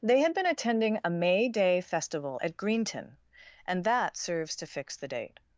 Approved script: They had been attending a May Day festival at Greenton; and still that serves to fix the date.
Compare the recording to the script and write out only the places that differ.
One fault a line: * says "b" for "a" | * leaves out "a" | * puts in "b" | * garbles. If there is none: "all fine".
* leaves out "still"